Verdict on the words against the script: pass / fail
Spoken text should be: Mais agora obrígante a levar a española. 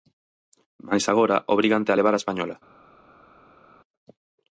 pass